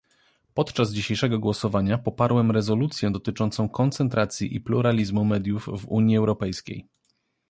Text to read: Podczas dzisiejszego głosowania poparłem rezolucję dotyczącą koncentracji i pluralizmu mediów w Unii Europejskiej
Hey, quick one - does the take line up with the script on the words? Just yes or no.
yes